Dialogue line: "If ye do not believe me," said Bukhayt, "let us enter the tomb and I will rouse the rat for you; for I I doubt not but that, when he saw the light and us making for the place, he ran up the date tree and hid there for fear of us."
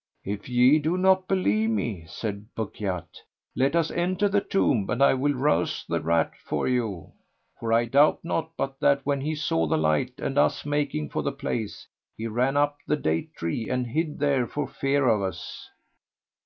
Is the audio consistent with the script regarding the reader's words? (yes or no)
no